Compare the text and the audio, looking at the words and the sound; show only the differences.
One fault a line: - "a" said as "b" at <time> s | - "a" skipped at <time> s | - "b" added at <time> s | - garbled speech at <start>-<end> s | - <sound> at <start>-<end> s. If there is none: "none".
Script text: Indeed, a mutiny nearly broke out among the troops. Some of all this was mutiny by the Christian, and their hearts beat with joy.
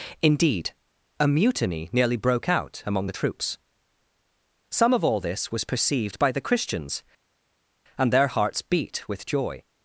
- "mutiny" said as "perceived" at 5.6 s
- "Christian" said as "Christians" at 6.4 s